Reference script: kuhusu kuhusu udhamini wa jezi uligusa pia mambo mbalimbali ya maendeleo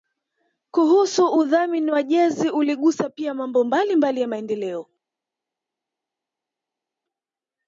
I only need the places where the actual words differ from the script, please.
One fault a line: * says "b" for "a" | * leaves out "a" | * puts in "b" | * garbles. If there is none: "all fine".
* leaves out "kuhusu"